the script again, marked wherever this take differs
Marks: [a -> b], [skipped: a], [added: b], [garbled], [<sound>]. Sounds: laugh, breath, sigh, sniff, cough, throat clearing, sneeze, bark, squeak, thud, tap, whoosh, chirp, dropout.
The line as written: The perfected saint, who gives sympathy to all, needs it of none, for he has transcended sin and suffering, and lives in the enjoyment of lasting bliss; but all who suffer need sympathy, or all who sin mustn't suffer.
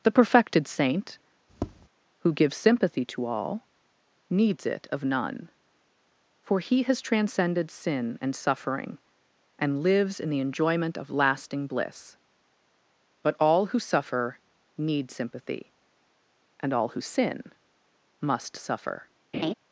The perfected saint, [tap] who gives sympathy to all, needs it of none, for he has transcended sin and suffering, and lives in the enjoyment of lasting bliss; but all who suffer need sympathy, [or -> and] all who sin [mustn't -> must] suffer. [laugh]